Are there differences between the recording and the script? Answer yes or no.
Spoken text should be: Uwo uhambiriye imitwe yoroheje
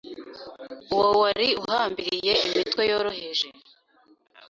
yes